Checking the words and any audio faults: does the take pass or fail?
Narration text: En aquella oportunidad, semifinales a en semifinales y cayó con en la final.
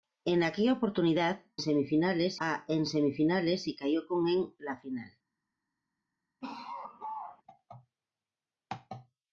fail